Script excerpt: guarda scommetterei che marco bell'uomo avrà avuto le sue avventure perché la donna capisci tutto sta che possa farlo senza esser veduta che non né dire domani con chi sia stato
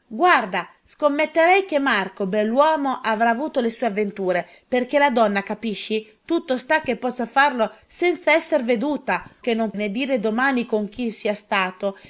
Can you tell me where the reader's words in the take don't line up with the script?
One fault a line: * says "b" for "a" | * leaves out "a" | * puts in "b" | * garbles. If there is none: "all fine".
all fine